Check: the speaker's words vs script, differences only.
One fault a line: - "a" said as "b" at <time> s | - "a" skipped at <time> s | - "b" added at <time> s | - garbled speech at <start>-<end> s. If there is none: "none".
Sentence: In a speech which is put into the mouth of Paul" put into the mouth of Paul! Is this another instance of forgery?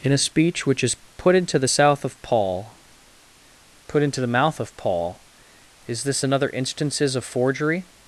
- "mouth" said as "south" at 1.6 s
- "instance" said as "instances" at 6.5 s